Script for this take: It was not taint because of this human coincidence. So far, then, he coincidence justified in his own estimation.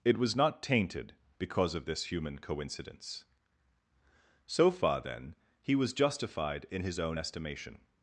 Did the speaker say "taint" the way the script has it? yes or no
no